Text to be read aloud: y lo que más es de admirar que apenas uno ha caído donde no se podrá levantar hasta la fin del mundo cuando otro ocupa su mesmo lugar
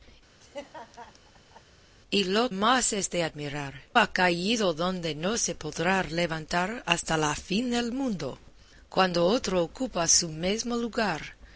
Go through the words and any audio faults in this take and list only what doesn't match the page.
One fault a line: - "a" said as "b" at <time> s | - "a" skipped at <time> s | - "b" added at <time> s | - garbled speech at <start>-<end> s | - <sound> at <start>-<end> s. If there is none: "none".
- laugh at 0.4-1.6 s
- "que" skipped at 2.5 s
- "que apenas uno" skipped at 3.8 s